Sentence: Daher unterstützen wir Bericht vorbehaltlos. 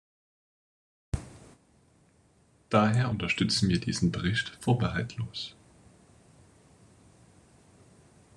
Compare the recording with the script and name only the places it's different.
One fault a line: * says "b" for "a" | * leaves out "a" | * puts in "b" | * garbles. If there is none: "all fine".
* puts in "diesen"